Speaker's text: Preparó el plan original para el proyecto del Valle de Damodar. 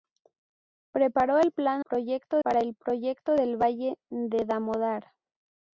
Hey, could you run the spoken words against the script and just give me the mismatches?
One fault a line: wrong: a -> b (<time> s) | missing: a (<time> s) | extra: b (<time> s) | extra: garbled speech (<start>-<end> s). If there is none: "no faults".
wrong: original -> proyecto (1.8 s)